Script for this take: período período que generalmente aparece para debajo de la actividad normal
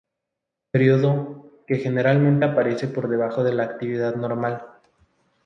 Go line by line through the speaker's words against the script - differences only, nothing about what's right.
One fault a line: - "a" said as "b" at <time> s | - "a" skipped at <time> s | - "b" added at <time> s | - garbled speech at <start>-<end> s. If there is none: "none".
- "período" skipped at 1.6 s
- "para" said as "por" at 2.9 s